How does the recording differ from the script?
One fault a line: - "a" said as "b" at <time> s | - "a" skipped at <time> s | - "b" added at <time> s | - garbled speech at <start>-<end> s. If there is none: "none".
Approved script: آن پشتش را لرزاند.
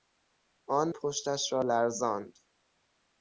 none